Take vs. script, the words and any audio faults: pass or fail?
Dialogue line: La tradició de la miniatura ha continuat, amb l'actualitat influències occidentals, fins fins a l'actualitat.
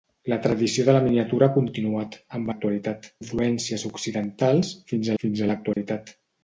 fail